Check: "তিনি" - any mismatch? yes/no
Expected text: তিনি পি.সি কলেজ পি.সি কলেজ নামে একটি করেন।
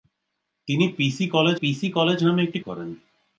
no